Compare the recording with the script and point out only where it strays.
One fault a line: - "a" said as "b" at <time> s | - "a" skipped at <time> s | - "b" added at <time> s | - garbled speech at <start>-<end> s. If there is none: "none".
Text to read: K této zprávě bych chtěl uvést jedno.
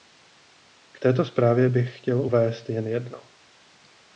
- "jen" added at 2.7 s